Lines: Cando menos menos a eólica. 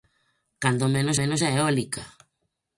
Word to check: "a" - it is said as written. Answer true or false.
true